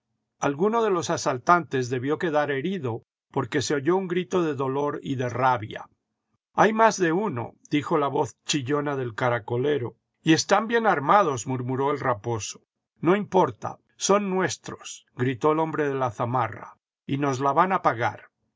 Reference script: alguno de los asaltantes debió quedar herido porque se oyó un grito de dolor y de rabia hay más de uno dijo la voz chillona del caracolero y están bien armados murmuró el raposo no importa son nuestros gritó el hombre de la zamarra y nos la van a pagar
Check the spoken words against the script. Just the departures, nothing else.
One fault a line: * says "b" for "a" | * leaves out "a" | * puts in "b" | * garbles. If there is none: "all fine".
all fine